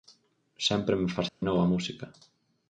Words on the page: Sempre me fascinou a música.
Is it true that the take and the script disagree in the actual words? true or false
false